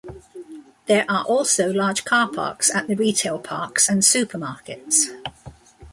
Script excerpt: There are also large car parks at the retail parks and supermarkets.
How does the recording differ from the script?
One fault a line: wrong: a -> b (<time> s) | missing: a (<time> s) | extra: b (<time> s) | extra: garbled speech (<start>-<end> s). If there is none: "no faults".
no faults